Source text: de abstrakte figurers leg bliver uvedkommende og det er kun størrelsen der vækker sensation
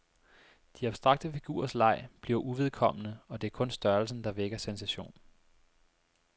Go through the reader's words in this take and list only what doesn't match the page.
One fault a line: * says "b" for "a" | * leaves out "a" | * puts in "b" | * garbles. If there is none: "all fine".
all fine